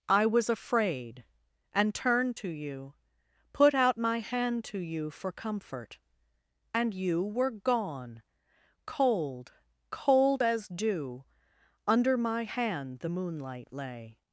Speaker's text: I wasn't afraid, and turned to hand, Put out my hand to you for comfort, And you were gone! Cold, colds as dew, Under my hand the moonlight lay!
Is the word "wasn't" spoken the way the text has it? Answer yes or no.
no